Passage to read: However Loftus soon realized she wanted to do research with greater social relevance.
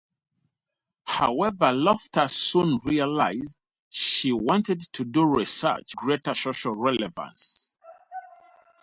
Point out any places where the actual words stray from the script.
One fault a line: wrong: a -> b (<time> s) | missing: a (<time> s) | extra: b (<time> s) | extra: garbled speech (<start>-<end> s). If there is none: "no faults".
missing: with (6.0 s)